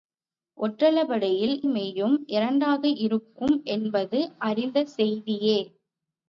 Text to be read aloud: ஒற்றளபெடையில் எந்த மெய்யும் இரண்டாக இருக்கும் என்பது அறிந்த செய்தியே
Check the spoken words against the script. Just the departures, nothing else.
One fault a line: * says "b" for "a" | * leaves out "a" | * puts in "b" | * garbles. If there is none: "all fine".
* leaves out "எந்த"